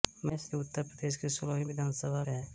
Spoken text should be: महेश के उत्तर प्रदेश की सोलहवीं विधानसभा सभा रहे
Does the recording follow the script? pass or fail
pass